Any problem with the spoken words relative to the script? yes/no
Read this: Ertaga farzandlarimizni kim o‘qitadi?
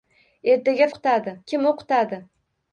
yes